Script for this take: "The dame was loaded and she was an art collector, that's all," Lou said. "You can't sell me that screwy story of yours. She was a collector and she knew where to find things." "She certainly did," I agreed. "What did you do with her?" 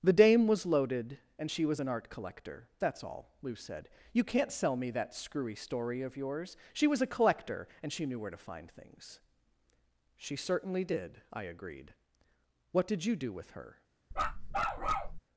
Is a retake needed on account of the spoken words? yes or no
no